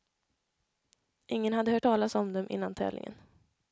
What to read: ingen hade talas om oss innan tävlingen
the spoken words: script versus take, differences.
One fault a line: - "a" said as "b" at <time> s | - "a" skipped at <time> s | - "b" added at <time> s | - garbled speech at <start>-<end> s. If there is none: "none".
- "hört" added at 1.7 s
- "oss" said as "dem" at 2.3 s